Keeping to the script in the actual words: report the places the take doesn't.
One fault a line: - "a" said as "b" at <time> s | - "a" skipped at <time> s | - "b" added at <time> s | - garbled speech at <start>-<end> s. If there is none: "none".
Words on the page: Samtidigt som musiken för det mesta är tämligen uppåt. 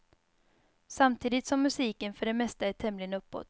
none